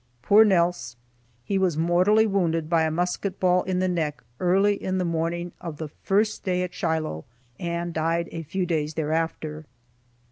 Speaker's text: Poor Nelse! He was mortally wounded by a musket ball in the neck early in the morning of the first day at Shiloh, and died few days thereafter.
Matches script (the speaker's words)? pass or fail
fail